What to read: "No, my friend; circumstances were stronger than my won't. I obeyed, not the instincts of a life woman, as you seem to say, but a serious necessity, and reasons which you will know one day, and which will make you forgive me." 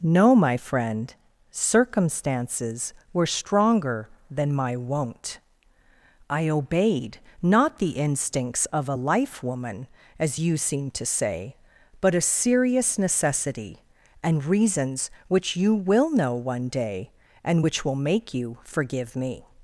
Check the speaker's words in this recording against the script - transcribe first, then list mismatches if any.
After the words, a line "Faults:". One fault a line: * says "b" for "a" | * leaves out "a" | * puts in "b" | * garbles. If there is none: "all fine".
"No, my friend; circumstances were stronger than my won't. I obeyed, not the instincts of a life woman, as you seem to say, but a serious necessity, and reasons which you will know one day, and which will make you forgive me."
Faults:
all fine